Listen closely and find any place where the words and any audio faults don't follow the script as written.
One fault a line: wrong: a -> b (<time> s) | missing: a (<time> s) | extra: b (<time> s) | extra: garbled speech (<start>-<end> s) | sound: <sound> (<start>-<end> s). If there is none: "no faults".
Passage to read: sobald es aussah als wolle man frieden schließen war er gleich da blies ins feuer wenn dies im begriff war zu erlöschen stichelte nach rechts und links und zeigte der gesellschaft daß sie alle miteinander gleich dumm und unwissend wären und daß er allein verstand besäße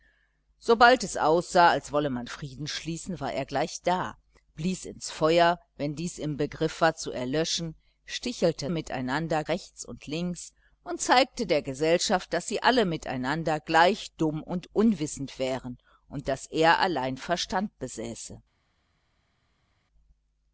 wrong: nach -> miteinander (8.7 s)